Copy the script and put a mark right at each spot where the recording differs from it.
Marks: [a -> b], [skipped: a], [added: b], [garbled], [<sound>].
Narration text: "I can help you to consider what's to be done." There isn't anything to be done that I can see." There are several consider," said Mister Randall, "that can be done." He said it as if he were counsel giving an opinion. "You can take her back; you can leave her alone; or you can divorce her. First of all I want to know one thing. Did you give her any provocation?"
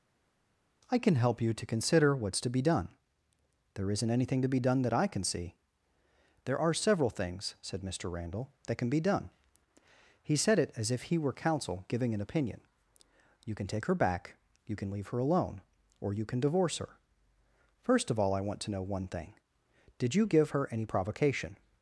"I can help you to consider what's to be done." There isn't anything to be done that I can see." There are several [consider," -> things] said Mister Randall, "that can be done." He said it as if he were counsel giving an opinion. "You can take her back; you can leave her alone; or you can divorce her. First of all I want to know one thing. Did you give her any provocation?"